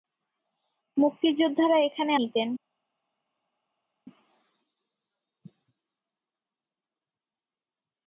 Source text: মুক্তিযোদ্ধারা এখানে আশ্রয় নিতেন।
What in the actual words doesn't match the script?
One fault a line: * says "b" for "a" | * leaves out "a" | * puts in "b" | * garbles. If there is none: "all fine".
* leaves out "আশ্রয়"